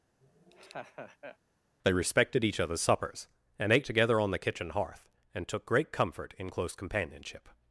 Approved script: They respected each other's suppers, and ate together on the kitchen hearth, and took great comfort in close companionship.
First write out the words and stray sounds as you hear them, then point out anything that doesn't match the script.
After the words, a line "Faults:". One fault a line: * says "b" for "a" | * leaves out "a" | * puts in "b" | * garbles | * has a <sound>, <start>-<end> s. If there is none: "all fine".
They respected each other's suppers, and ate together on the kitchen hearth, and took great comfort in close companionship.
Faults:
* has a laugh, 0.2-1.4 s